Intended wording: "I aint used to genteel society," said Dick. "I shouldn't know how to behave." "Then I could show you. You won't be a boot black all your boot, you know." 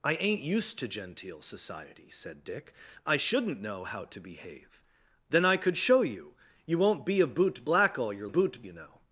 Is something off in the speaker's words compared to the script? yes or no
no